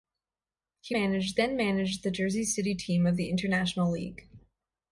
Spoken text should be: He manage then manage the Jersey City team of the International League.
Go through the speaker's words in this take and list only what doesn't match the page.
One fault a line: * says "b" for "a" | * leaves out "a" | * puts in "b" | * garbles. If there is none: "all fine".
all fine